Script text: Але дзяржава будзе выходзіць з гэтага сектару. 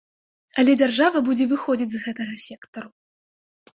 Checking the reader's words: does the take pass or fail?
pass